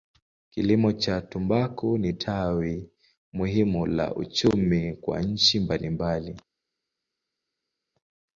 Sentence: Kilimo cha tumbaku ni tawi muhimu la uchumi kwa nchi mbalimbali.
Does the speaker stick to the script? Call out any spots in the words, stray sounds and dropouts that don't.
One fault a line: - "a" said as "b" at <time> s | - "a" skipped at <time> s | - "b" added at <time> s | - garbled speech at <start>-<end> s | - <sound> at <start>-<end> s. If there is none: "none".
none